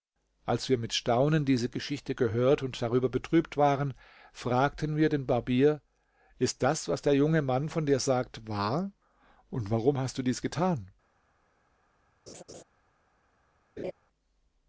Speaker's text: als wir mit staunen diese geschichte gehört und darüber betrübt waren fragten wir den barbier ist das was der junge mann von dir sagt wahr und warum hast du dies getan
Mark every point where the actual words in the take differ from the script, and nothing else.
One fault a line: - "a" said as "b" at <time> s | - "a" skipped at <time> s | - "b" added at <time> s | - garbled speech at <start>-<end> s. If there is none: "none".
none